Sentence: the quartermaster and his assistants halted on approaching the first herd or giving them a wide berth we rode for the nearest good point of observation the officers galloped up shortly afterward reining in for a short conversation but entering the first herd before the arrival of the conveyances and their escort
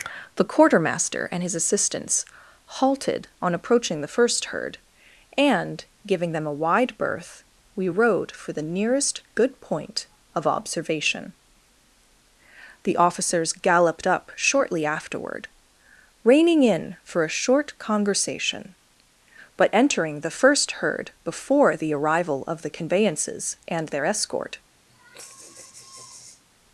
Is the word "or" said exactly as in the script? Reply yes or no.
no